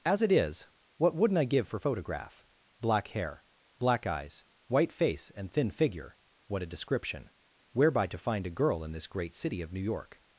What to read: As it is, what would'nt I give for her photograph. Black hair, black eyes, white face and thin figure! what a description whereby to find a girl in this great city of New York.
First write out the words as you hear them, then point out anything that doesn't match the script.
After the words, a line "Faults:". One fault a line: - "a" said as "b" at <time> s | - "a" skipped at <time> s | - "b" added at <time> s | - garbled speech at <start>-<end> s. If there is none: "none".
As it is, what would'nt I give for photograph. Black hair, black eyes, white face and thin figure! what a description whereby to find a girl in this great city of New York.
Faults:
- "her" skipped at 1.8 s